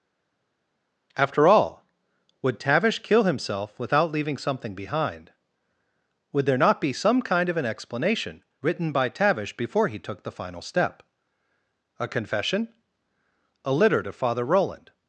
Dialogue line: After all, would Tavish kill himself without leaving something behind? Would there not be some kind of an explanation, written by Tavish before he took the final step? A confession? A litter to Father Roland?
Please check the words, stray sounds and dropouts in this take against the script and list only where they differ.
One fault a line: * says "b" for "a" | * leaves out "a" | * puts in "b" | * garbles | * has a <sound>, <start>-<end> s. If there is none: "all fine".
all fine